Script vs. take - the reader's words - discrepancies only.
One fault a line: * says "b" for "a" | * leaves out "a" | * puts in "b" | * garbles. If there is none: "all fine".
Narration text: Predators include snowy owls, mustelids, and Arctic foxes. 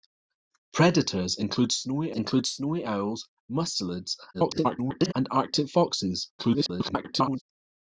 * puts in "include snowy"
* garbles
* garbles